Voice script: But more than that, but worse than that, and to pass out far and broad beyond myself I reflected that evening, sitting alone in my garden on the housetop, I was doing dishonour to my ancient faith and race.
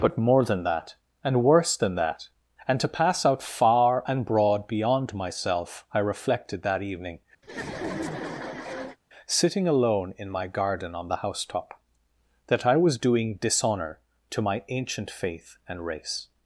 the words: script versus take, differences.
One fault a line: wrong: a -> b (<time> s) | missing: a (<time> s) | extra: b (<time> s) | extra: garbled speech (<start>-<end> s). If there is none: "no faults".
wrong: but -> and (1.2 s)
extra: that (12.5 s)